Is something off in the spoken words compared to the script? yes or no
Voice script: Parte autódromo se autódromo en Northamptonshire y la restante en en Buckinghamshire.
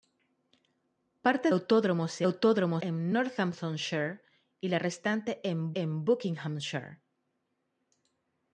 no